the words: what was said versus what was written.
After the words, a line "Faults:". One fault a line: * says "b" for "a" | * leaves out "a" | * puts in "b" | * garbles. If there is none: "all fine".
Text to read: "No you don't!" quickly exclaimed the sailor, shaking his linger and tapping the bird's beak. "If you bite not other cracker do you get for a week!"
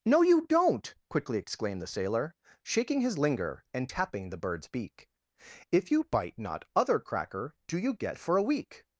"No you don't!" quickly exclaimed the sailor, shaking his linger and tapping the bird's beak. "If you bite not other cracker do you get for a week!"
Faults:
all fine